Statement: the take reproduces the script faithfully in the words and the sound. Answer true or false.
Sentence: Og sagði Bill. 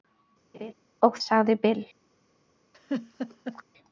false